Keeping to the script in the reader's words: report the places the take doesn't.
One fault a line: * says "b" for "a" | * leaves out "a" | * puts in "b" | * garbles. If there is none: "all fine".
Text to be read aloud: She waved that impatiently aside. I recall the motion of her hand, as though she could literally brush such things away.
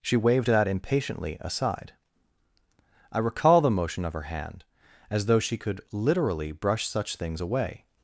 all fine